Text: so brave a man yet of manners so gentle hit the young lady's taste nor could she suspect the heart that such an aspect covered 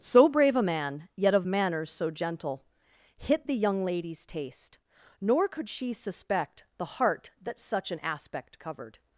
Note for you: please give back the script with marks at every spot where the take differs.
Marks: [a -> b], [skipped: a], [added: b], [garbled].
so brave a man yet of manners so gentle hit the young lady's taste nor could she suspect the heart that such an aspect covered